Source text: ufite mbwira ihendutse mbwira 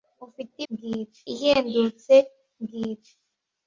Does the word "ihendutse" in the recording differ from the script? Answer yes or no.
no